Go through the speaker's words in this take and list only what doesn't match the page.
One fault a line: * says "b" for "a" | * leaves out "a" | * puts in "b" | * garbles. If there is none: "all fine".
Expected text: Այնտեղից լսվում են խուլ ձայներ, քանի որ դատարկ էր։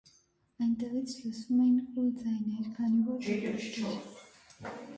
* says "էին" for "են"